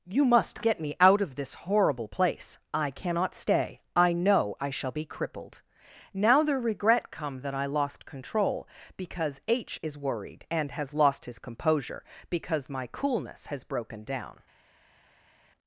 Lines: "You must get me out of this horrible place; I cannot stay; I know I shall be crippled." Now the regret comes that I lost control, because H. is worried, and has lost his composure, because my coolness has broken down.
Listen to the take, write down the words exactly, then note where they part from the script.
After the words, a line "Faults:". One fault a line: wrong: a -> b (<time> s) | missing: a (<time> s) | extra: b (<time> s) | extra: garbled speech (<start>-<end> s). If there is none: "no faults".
"You must get me out of this horrible place; I cannot stay; I know I shall be crippled." Now the regret come that I lost control, because H. is worried, and has lost his composure, because my coolness has broken down.
Faults:
wrong: comes -> come (7.1 s)